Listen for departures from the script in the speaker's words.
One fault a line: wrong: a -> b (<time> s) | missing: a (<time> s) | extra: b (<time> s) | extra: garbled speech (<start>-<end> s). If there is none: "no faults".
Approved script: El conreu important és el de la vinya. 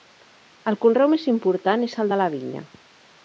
extra: més (1.1 s)